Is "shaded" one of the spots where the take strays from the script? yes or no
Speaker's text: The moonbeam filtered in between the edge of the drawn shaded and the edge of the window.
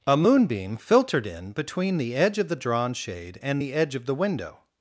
yes